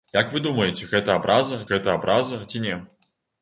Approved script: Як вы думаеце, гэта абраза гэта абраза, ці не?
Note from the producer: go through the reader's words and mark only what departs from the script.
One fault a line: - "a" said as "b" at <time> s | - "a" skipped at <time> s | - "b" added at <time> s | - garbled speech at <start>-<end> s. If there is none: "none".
none